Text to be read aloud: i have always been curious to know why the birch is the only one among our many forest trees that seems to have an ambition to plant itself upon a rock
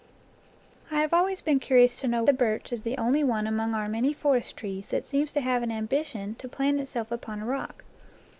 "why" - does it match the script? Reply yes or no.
no